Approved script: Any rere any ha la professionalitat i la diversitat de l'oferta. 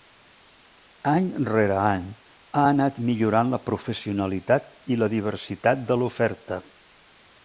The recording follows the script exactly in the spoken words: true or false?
false